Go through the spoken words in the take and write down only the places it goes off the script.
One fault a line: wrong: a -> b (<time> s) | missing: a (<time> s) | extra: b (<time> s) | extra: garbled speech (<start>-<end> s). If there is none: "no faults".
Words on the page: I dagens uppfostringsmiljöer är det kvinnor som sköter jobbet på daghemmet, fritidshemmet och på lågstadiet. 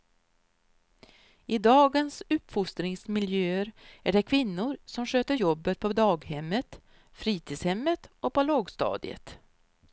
no faults